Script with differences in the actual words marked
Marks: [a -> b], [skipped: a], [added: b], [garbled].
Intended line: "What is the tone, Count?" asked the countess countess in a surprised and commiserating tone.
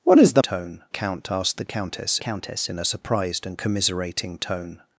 "What is the tone, Count?" asked the countess countess in a surprised and commiserating tone.